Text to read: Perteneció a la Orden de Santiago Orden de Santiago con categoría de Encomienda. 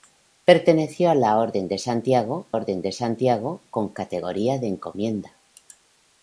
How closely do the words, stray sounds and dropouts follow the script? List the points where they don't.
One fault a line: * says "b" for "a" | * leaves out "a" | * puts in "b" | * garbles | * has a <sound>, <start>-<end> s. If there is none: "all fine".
all fine